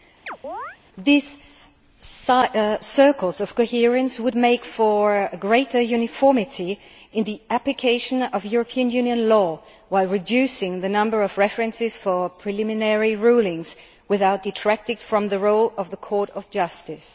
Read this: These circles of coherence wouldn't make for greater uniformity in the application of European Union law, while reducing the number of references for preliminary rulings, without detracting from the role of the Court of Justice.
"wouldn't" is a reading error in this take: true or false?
true